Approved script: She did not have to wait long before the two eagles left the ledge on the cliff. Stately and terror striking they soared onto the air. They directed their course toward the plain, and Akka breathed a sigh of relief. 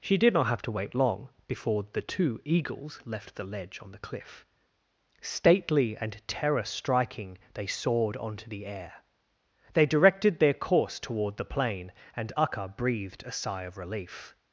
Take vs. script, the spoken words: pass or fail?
pass